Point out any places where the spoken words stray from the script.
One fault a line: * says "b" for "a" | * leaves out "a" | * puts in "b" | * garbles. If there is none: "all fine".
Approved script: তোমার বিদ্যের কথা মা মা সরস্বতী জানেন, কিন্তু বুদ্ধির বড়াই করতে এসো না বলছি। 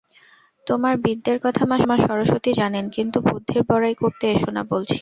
all fine